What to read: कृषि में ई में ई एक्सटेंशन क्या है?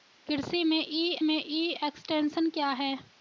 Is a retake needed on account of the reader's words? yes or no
no